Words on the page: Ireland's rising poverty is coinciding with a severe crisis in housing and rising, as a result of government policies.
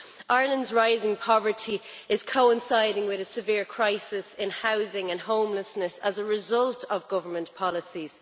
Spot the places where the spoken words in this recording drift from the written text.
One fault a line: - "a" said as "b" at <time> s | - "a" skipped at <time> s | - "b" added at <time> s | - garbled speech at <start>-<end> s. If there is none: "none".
- "rising" said as "homelessness" at 5.2 s